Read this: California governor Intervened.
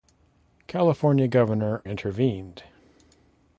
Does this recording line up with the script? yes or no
yes